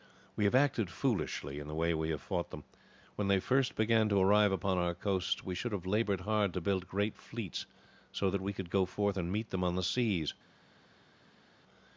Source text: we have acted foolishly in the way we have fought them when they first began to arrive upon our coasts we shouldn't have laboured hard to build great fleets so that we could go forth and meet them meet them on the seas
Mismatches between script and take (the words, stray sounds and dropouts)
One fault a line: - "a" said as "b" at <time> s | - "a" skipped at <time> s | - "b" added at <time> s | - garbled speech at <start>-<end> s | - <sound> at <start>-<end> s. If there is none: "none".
- "shouldn't" said as "should" at 5.6 s
- "meet them" skipped at 9.6 s